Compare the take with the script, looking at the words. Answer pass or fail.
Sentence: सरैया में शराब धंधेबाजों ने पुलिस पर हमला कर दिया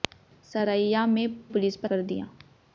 fail